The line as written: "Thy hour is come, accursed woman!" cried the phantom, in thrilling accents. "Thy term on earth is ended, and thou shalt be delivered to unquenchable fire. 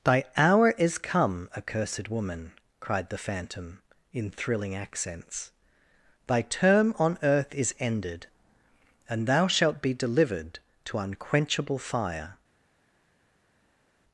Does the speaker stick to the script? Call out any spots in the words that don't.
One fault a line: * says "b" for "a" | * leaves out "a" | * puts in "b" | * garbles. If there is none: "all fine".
all fine